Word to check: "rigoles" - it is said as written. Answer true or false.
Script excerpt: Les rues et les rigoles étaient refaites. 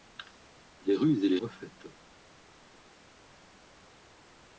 false